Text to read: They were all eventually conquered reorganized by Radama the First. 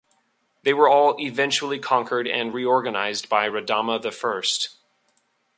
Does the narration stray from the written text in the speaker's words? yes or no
yes